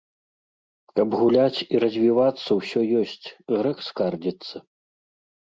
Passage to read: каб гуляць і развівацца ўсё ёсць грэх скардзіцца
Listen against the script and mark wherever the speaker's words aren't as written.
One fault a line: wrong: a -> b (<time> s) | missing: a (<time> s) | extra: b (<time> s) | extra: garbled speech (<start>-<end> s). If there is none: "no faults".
no faults